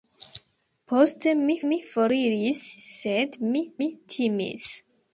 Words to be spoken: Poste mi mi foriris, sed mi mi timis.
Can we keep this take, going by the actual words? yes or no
yes